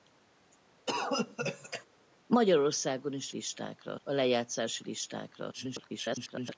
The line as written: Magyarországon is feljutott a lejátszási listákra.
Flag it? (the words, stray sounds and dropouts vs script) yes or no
yes